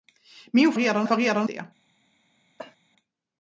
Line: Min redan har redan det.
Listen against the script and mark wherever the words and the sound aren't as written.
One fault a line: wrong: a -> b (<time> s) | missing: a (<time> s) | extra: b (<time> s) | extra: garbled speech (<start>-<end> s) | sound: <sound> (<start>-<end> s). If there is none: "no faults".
sound: cough (2.6-2.8 s)